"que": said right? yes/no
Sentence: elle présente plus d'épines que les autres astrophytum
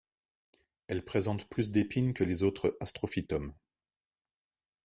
yes